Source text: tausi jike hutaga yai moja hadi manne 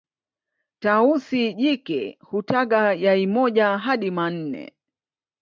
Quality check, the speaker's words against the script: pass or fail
pass